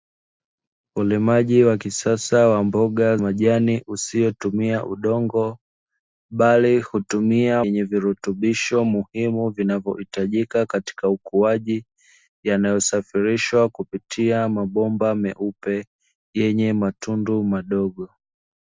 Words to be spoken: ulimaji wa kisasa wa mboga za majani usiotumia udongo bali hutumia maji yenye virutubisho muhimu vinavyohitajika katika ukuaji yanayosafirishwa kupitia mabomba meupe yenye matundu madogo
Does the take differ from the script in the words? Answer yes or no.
yes